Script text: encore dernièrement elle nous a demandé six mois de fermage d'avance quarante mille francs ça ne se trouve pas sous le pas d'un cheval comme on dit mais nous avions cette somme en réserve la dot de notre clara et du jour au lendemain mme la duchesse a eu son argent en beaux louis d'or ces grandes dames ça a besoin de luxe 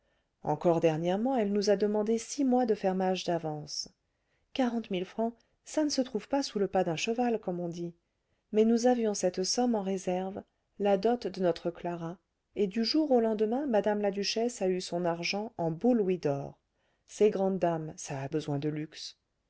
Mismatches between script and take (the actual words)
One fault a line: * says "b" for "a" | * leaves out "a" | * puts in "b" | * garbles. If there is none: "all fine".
all fine